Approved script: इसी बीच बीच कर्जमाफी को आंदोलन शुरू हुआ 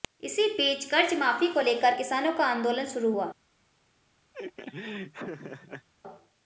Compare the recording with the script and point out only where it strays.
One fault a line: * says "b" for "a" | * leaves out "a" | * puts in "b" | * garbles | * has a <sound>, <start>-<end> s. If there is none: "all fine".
* leaves out "बीच"
* puts in "लेकर किसानों का"
* has a laugh, 4.3-5.9 s